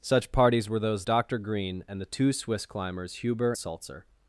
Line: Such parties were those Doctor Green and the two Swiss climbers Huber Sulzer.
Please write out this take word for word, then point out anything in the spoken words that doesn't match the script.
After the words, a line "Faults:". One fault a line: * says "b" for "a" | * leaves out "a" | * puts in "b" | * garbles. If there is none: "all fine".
Such parties were those Doctor Green and the two Swiss climbers Huber Sulzer.
Faults:
all fine